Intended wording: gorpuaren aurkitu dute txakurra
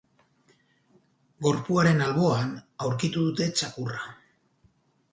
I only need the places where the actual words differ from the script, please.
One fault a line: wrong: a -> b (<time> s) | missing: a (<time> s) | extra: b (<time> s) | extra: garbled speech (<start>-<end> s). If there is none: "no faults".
extra: alboan (2.0 s)